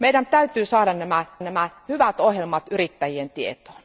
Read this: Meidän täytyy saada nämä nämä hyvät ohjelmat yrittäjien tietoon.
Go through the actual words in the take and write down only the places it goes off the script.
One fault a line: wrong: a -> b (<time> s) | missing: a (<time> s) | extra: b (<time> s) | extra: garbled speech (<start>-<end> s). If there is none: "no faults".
no faults